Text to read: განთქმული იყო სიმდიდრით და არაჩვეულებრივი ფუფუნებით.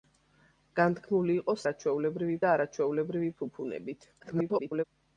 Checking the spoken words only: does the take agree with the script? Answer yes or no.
no